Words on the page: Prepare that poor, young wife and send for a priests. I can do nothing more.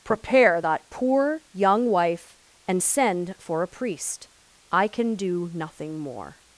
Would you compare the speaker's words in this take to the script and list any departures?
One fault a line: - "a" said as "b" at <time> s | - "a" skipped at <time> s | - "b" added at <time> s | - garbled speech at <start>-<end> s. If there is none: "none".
- "priests" said as "priest" at 3.7 s